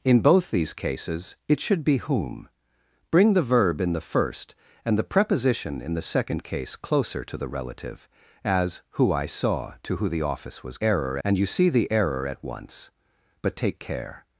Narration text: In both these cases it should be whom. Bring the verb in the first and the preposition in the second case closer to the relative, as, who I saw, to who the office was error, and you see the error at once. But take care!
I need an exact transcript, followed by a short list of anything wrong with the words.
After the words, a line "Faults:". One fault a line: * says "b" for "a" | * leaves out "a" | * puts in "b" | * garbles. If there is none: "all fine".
In both these cases it should be whom. Bring the verb in the first and the preposition in the second case closer to the relative, as, who I saw, to who the office was error, and you see the error at once. But take care!
Faults:
all fine